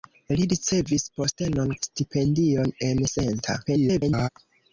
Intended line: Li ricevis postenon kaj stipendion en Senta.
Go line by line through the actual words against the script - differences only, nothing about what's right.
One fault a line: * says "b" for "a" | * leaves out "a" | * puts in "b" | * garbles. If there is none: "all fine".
* leaves out "kaj"
* garbles